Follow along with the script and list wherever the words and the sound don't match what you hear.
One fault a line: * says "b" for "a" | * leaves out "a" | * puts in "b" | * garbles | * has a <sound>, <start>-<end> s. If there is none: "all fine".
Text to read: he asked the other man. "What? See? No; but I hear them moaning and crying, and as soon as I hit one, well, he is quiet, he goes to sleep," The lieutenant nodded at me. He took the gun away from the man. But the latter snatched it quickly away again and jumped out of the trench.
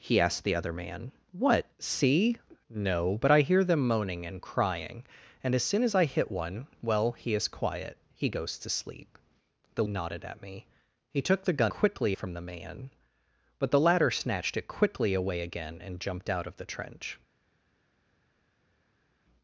* leaves out "lieutenant"
* says "quickly" for "away"